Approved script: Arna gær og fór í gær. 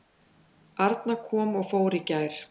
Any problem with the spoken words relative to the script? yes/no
yes